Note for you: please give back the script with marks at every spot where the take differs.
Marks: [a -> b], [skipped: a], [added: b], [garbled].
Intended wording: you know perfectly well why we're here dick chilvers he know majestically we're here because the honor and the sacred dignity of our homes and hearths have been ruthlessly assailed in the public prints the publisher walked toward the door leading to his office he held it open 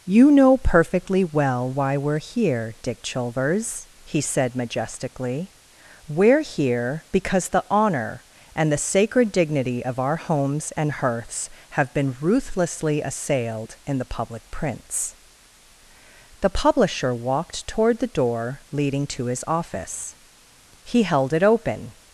you know perfectly well why we're here dick chilvers he [know -> said] majestically we're here because the honor and the sacred dignity of our homes and hearths have been ruthlessly assailed in the public prints the publisher walked toward the door leading to his office he held it open